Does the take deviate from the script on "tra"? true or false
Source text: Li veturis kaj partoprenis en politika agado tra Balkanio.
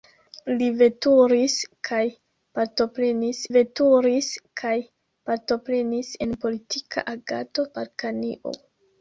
true